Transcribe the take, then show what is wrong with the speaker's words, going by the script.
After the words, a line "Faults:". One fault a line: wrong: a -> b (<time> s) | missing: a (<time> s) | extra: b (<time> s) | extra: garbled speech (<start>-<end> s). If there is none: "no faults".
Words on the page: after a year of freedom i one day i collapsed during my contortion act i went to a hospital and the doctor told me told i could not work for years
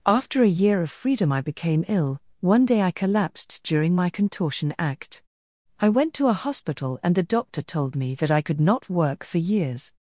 after a year of freedom i became ill one day i collapsed during my contortion act i went to a hospital and the doctor told me that i could not work for years
Faults:
extra: became ill (1.4 s)
wrong: told -> that (8.2 s)